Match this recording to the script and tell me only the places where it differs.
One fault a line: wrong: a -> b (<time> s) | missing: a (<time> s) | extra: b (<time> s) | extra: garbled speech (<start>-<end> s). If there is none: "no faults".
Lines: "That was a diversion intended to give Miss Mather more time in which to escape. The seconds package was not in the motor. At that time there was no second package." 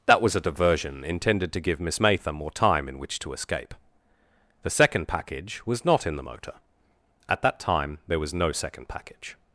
wrong: seconds -> second (4.7 s)